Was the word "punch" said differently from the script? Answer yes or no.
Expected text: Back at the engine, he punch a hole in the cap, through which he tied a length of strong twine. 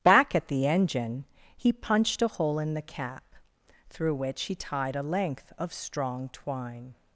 yes